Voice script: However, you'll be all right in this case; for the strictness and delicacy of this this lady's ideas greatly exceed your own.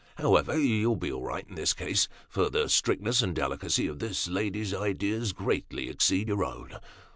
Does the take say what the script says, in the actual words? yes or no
no